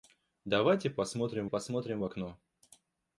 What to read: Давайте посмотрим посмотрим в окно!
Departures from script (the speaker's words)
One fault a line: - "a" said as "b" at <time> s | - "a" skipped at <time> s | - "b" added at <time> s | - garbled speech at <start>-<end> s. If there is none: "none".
none